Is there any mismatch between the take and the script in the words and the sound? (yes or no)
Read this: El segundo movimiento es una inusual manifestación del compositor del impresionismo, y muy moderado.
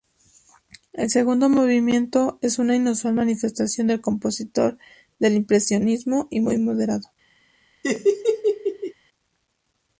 yes